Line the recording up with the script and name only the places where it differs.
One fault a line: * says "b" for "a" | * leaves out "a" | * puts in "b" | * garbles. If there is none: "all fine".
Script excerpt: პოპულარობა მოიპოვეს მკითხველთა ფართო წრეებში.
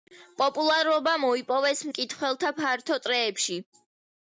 all fine